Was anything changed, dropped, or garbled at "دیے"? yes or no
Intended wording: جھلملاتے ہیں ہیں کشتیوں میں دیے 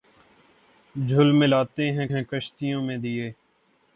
no